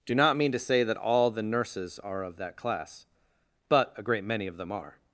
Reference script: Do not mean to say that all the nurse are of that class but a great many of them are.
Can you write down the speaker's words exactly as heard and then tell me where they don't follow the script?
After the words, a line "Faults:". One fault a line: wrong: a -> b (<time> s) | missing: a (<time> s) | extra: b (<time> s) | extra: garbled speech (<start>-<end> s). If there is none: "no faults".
Do not mean to say that all the nurses are of that class but a great many of them are.
Faults:
wrong: nurse -> nurses (1.4 s)